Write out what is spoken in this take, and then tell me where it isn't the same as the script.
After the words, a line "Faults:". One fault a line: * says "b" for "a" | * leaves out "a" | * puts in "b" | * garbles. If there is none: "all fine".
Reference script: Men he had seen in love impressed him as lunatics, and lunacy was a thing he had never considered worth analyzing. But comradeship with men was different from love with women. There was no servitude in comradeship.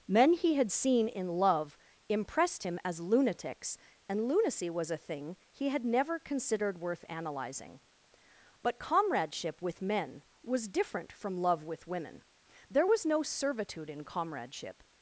Men he had seen in love impressed him as lunatics, and lunacy was a thing he had never considered worth analyzing. But comradeship with men was different from love with women. There was no servitude in comradeship.
Faults:
all fine